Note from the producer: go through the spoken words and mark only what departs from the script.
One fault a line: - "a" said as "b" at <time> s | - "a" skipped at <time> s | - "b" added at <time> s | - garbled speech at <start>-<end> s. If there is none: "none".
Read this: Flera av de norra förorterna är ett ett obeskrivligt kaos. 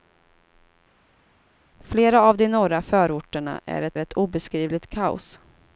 none